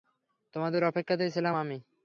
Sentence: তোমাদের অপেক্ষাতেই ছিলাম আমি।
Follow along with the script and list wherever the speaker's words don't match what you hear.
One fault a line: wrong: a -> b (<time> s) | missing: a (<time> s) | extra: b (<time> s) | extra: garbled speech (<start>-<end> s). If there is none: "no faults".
no faults